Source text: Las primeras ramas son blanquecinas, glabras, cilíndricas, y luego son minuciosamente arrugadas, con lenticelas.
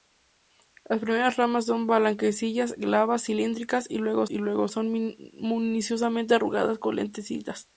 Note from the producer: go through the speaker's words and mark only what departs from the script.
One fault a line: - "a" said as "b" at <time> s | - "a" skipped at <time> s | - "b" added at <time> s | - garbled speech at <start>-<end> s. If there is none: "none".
- "y luego" added at 4.3 s